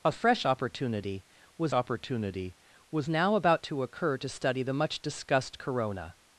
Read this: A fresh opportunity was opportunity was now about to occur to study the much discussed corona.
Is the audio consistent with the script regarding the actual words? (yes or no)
yes